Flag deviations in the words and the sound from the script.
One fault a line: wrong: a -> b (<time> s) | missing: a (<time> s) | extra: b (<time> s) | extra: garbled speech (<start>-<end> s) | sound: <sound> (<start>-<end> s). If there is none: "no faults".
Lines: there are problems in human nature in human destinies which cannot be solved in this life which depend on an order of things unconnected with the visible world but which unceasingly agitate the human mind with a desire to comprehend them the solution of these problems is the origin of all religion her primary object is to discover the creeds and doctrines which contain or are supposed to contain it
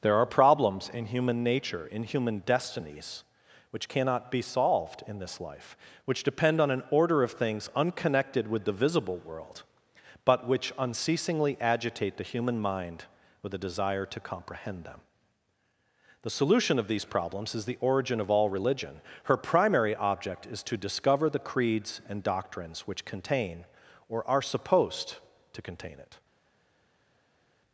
no faults